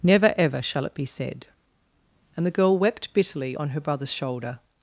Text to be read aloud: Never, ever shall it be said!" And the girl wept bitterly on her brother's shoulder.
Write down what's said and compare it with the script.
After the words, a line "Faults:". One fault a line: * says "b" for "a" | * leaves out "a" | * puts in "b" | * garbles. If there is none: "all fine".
Never, ever shall it be said!" And the girl wept bitterly on her brother's shoulder.
Faults:
all fine